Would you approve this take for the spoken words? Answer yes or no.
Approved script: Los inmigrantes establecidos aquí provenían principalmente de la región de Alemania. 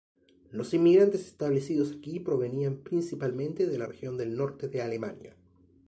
no